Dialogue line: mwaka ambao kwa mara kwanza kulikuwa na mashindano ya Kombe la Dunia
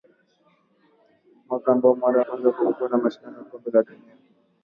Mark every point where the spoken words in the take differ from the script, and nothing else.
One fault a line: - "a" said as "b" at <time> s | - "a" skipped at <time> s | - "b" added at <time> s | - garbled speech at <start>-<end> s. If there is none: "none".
none